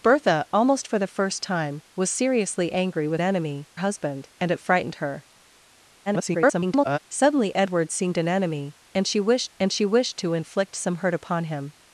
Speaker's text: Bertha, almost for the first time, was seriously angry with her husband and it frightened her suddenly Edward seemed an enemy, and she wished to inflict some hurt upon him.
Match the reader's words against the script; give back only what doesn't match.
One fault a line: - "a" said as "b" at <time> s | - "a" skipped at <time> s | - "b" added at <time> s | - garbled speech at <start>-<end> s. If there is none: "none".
- "her" said as "enemy" at 3.2 s
- garbled speech at 6.1-7.0 s
- "and she wished" added at 9.6 s